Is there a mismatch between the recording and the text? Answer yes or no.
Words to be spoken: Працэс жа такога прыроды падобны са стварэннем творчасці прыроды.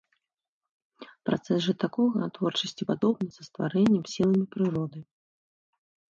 yes